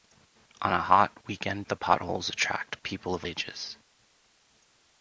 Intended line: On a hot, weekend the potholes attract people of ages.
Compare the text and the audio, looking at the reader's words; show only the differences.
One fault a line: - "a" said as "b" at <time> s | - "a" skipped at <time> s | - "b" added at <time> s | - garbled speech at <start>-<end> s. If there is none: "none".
none